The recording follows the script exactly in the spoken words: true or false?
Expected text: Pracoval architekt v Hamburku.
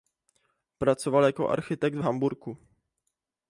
false